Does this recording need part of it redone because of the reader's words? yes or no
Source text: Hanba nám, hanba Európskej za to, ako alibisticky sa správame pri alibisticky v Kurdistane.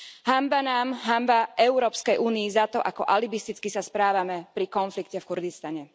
yes